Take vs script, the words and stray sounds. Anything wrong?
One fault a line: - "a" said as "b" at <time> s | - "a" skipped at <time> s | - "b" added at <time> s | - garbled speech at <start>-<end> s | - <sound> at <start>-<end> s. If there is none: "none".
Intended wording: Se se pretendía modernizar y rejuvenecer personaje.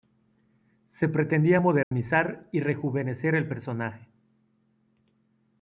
- "se" skipped at 1.1 s
- dropout at 1.8-1.9 s
- "el" added at 3.4 s